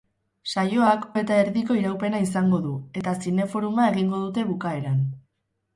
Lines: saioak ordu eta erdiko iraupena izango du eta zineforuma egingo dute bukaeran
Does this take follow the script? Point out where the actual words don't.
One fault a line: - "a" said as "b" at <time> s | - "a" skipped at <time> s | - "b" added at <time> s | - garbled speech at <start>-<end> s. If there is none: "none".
- "ordu" skipped at 1.0 s